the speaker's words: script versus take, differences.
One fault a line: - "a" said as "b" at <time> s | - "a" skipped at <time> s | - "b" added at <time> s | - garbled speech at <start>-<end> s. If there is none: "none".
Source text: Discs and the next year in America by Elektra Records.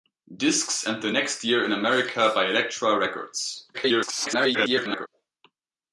- garbled speech at 3.7-5.1 s